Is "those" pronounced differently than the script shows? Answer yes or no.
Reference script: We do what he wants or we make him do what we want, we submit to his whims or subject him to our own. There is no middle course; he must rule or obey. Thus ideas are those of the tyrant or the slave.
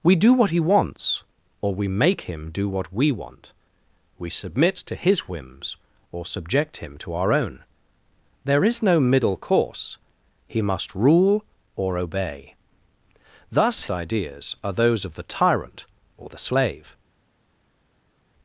no